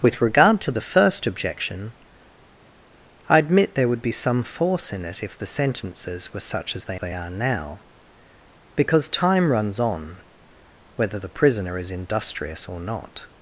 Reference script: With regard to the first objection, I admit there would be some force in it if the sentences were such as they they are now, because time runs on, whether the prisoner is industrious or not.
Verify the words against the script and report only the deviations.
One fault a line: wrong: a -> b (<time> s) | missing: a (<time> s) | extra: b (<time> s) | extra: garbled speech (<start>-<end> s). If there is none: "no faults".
no faults